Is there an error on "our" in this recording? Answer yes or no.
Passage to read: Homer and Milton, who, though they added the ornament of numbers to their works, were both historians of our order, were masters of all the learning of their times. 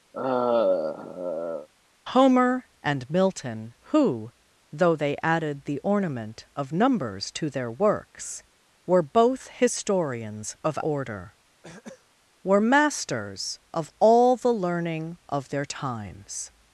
yes